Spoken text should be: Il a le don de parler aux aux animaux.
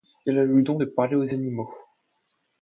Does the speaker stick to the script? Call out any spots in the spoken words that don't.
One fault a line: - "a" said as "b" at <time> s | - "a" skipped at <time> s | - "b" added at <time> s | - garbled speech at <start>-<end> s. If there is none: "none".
- "aux" skipped at 1.3 s